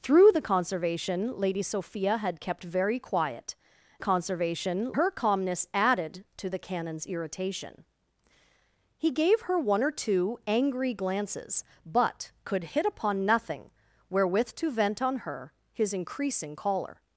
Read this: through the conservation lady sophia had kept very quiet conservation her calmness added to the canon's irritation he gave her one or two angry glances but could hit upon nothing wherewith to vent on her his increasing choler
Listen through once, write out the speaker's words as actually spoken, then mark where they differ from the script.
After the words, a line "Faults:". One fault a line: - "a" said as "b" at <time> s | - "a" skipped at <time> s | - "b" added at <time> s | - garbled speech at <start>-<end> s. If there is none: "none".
through the conservation lady sophia had kept very quiet conservation her calmness added to the canon's irritation he gave her one or two angry glances but could hit upon nothing wherewith to vent on her his increasing choler
Faults:
none